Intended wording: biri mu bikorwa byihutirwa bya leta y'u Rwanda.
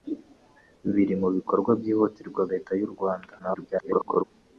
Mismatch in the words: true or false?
true